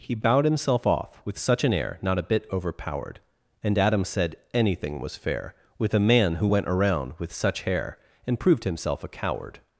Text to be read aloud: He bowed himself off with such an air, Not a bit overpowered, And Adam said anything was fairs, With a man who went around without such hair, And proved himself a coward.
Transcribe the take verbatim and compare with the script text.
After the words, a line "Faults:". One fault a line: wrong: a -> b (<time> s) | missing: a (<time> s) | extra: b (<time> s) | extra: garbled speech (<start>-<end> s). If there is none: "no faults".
He bowed himself off with such an air, Not a bit overpowered, And Adam said anything was fair, With a man who went around with such hair, And proved himself a coward.
Faults:
wrong: fairs -> fair (5.2 s)
wrong: without -> with (7.2 s)